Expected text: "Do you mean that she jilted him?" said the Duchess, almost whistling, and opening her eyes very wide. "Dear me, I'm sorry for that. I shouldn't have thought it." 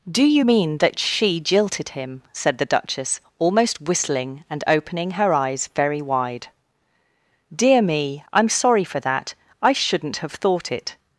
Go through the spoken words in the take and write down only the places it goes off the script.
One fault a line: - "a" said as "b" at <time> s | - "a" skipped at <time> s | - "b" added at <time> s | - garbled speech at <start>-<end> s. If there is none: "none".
none